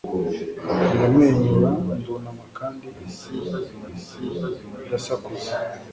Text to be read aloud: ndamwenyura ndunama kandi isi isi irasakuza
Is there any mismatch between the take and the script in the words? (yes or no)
no